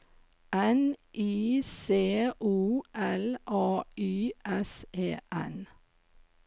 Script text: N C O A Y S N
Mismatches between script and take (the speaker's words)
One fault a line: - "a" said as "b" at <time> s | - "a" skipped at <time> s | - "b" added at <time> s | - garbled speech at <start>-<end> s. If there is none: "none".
- "I" added at 1.1 s
- "L" added at 2.9 s
- "E" added at 4.9 s